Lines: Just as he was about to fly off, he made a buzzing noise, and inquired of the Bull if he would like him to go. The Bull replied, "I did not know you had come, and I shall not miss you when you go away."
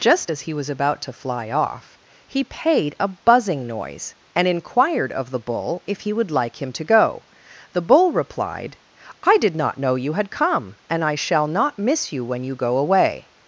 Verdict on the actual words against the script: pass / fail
fail